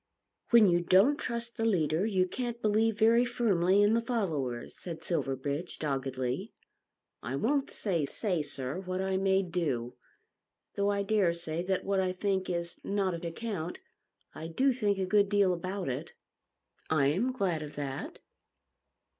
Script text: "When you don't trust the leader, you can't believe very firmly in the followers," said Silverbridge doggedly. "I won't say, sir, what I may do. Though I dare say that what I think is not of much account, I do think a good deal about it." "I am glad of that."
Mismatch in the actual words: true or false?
true